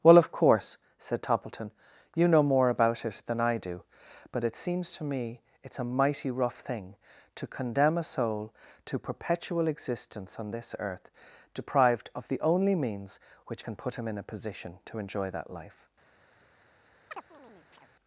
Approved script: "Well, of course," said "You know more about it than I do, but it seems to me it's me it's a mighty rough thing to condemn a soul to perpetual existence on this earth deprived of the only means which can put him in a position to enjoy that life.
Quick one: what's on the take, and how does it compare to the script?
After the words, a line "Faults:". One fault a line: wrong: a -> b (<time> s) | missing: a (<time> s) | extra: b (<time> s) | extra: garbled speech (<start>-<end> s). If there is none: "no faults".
"Well, of course," said Toppleton, "you know more about it than I do, but it seems to me it's a mighty rough thing to condemn a soul to perpetual existence on this earth deprived of the only means which can put him in a position to enjoy that life.
Faults:
extra: Toppleton (1.2 s)
missing: me it's (5.8 s)